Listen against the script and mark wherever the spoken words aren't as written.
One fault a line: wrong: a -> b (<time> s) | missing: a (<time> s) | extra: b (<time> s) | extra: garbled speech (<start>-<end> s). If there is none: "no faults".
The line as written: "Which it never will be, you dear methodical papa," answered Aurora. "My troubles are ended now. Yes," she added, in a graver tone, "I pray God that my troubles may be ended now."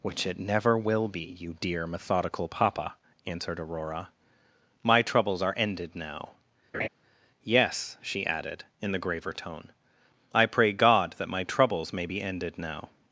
wrong: a -> the (8.9 s)